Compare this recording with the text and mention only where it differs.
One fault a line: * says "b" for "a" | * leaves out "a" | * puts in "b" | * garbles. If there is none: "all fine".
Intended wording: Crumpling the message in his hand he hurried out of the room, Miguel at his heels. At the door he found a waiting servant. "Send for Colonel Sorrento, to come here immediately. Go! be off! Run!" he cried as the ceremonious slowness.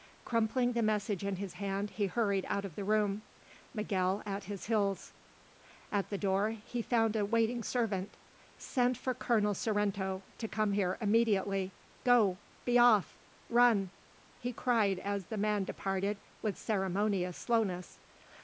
* puts in "man departed with"